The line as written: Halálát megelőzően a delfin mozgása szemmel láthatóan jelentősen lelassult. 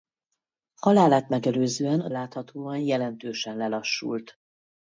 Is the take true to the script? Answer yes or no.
no